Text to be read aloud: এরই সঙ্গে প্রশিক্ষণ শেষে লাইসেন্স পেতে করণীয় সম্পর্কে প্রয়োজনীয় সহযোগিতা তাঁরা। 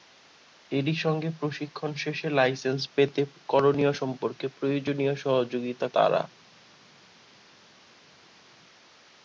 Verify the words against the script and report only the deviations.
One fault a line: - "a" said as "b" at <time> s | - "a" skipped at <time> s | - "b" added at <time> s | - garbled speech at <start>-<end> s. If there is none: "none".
none